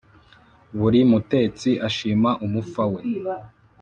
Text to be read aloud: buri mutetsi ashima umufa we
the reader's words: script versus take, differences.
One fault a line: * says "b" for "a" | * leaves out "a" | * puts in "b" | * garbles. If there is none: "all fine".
all fine